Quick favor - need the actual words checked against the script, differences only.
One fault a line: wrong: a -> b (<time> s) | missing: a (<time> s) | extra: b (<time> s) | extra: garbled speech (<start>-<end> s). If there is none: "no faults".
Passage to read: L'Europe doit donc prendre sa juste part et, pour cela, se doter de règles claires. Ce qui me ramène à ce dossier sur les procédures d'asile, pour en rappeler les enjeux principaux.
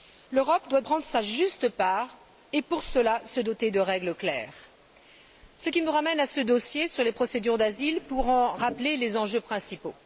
missing: donc (0.8 s)